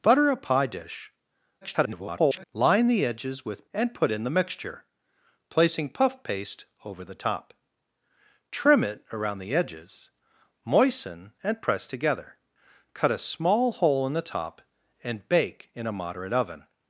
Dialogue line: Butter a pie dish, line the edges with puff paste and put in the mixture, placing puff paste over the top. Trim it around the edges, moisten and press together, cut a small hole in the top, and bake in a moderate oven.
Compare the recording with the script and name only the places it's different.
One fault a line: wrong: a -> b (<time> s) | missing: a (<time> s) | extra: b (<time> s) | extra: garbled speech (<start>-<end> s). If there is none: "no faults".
extra: garbled speech (1.6-2.4 s)
missing: puff paste (3.7 s)